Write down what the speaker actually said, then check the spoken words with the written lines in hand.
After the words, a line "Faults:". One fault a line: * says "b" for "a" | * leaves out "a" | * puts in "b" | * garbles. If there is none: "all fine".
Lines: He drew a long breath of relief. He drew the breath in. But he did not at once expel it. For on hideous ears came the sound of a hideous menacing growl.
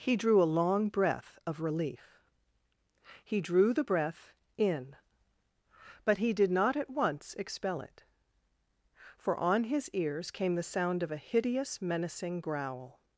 He drew a long breath of relief. He drew the breath in. But he did not at once expel it. For on his ears came the sound of a hideous menacing growl.
Faults:
* says "his" for "hideous"